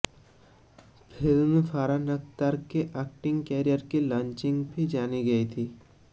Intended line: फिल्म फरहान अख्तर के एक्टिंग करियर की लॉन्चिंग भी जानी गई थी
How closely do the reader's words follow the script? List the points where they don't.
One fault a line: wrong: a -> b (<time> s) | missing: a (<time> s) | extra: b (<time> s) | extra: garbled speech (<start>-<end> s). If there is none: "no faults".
no faults